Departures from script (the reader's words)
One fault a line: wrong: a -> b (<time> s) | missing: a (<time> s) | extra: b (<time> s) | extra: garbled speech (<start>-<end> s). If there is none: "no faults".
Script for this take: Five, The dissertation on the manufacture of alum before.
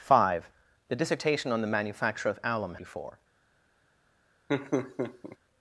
no faults